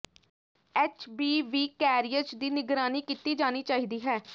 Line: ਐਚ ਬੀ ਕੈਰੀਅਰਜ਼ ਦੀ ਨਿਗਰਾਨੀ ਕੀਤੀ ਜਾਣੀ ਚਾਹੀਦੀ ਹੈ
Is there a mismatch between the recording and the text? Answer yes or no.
yes